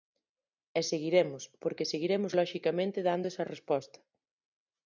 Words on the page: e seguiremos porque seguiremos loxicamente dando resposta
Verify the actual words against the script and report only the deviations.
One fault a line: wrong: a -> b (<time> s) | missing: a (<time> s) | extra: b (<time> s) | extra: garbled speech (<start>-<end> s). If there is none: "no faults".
extra: esa (3.3 s)